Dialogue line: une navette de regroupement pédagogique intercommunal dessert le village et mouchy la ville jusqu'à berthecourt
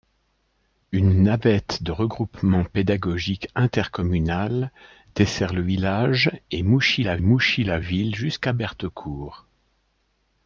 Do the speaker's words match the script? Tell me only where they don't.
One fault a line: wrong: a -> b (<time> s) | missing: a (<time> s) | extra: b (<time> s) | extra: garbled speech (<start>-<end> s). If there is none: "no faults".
extra: mouchy la (7.2 s)